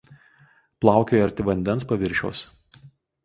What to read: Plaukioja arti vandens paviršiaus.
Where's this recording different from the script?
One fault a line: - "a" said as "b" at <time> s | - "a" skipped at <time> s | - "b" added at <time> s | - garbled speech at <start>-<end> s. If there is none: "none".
none